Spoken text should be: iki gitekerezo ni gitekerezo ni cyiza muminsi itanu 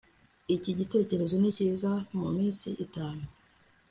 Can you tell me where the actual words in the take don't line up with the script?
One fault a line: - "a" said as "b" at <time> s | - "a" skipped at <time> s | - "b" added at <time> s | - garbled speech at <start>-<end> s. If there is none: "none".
- "gitekerezo ni" skipped at 1.5 s